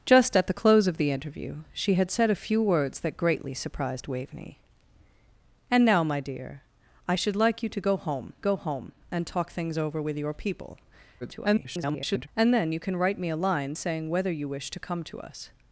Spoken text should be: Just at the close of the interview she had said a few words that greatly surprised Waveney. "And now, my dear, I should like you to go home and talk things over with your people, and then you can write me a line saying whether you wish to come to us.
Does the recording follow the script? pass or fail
fail